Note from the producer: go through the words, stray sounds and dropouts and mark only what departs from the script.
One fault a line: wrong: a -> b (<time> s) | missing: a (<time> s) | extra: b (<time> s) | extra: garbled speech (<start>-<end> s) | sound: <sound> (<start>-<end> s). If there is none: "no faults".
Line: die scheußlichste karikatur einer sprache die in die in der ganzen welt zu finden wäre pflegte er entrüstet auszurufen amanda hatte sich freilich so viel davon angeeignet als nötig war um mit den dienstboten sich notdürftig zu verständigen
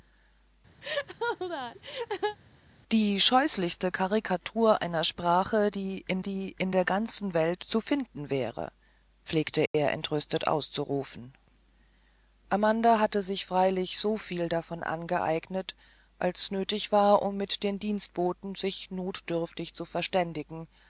sound: laugh (0.8-2.4 s)
sound: dropout (9.7-9.7 s)